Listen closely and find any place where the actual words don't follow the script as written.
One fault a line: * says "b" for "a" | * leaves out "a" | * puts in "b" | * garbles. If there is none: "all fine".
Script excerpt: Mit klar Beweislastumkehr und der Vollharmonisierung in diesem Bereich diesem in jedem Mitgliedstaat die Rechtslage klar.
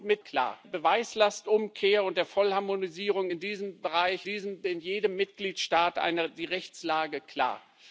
all fine